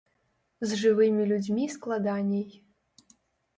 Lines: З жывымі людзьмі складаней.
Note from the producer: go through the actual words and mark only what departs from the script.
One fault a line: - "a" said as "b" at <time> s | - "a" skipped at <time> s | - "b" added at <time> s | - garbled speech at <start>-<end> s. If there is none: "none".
none